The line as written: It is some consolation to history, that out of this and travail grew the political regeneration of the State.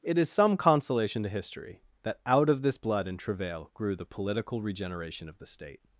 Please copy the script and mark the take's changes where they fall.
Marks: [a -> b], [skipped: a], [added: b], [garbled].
It is some consolation to history, that out of this [added: blood] and travail grew the political regeneration of the State.